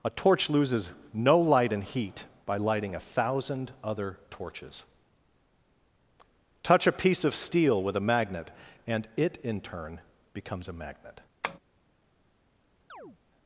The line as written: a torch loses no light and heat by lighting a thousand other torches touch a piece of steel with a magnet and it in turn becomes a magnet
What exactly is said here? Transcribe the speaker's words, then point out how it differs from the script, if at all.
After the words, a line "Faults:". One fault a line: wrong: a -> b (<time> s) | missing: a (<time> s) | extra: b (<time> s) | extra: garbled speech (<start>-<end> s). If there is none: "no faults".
a torch loses no light and heat by lighting a thousand other torches touch a piece of steel with a magnet and it in turn becomes a magnet
Faults:
no faults